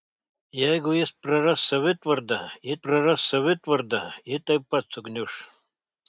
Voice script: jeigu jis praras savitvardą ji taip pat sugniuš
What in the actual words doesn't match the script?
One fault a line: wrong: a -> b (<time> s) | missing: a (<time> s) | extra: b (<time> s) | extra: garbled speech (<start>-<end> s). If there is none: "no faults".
extra: praras savitvardą ji (2.9 s)